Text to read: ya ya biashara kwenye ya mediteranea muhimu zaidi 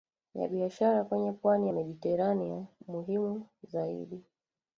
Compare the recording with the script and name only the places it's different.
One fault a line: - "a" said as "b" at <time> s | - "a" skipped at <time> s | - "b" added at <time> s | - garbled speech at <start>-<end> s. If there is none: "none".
- "ya" skipped at 0.5 s
- "pwani" added at 1.3 s